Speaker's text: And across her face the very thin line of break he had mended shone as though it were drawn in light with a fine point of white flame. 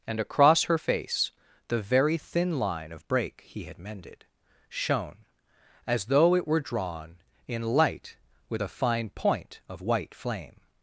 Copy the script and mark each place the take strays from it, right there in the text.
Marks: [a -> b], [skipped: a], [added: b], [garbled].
And across her face the very thin line of break he had mended shone as though it were drawn in light with a fine point of white flame.